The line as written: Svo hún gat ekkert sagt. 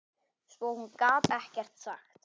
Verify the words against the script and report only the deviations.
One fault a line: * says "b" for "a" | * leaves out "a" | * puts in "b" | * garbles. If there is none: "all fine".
all fine